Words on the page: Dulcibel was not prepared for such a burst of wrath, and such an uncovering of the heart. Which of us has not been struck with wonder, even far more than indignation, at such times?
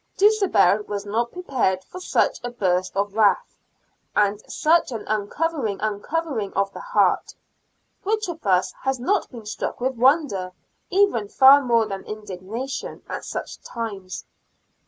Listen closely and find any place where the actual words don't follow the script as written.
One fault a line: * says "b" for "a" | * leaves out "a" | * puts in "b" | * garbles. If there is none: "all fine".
* puts in "uncovering"